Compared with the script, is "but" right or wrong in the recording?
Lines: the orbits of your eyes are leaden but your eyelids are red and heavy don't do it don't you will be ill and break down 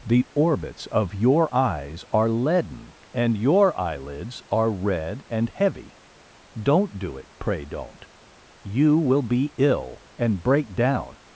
wrong